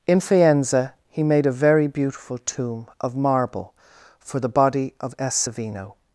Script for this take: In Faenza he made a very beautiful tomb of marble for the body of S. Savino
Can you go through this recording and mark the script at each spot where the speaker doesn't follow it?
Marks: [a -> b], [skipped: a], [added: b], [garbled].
In Faenza he made a very beautiful tomb of marble for the body of S. Savino